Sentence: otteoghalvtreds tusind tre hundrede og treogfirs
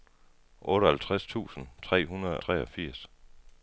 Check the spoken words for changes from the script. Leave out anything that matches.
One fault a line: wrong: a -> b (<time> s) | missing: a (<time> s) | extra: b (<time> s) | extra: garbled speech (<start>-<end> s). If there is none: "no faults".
missing: og (2.4 s)